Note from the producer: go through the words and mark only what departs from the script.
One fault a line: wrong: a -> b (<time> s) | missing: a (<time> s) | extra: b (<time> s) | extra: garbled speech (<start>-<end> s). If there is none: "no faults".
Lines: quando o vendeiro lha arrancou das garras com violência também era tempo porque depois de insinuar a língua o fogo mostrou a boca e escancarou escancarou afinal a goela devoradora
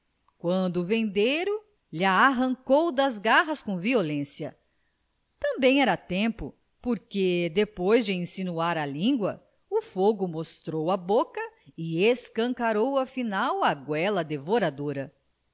missing: escancarou (13.0 s)